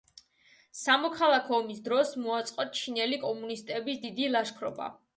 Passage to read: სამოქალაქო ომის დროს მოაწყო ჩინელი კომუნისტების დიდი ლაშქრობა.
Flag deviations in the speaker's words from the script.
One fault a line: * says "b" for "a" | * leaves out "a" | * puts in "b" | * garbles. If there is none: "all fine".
all fine